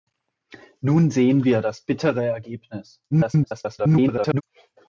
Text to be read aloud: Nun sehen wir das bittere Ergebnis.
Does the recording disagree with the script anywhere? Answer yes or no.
yes